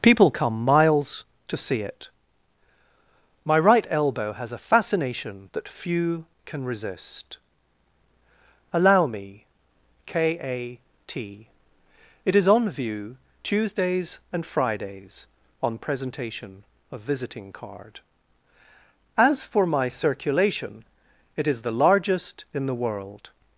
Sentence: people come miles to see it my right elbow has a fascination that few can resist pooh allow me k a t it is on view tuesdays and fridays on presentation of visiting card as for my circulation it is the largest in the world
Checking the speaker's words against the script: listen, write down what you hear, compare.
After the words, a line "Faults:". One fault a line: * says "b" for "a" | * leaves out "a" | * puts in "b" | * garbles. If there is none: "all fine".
people come miles to see it my right elbow has a fascination that few can resist allow me k a t it is on view tuesdays and fridays on presentation of visiting card as for my circulation it is the largest in the world
Faults:
* leaves out "pooh"